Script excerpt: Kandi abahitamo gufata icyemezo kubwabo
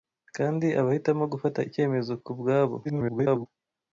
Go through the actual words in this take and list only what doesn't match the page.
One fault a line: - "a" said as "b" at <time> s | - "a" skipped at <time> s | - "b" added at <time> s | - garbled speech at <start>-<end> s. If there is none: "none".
- garbled speech at 2.8-3.5 s